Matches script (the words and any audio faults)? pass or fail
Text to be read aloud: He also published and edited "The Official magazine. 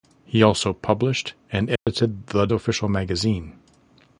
fail